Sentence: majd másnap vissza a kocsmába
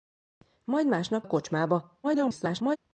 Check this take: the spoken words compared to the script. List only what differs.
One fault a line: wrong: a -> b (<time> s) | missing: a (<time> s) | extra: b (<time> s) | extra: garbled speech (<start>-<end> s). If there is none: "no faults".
missing: vissza (1.2 s)
extra: garbled speech (2.0-2.8 s)